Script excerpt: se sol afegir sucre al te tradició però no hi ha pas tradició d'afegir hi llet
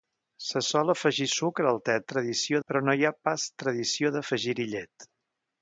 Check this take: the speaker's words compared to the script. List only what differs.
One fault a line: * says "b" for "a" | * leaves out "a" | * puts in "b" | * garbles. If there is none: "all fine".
all fine